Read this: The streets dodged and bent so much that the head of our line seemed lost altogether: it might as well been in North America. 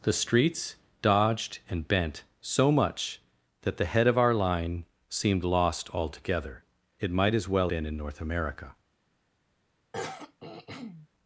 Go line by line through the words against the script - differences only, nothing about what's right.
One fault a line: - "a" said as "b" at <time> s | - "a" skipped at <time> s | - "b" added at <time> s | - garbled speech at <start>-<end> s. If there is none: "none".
none